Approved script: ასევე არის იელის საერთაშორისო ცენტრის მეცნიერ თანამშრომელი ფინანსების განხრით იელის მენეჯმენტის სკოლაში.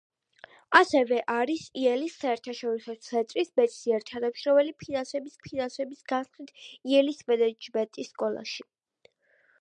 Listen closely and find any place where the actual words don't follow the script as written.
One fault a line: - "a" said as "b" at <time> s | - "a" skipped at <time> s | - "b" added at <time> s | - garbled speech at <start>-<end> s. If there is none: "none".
- "ფინანსების" added at 5.5 s